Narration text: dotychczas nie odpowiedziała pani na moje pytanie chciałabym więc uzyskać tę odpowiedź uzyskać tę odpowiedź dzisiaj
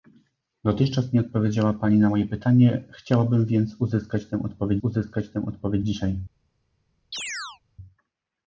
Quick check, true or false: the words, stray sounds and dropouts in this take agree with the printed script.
false